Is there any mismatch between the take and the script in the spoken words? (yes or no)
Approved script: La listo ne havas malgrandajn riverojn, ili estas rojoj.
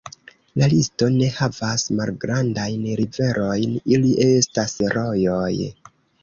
no